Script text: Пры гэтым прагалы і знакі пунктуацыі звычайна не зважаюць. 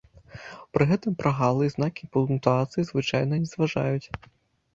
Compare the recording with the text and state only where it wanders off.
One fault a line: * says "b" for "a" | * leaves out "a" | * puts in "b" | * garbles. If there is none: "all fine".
all fine